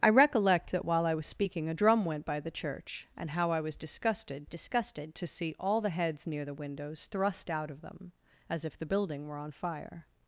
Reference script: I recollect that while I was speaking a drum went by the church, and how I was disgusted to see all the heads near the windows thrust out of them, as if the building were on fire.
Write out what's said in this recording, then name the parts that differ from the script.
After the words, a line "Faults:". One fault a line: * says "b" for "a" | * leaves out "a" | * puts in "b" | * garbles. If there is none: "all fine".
I recollect that while I was speaking a drum went by the church, and how I was disgusted disgusted to see all the heads near the windows thrust out of them, as if the building were on fire.
Faults:
* puts in "disgusted"